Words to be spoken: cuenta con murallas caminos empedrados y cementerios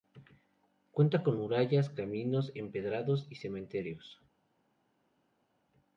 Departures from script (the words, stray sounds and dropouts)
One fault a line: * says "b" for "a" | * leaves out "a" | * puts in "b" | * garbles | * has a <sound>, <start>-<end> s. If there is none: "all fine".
all fine